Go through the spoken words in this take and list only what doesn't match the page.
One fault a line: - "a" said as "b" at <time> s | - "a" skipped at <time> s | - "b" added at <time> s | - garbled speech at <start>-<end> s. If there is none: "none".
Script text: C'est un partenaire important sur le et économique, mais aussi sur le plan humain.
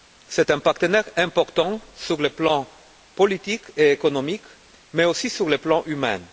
- "plan politique" added at 2.3 s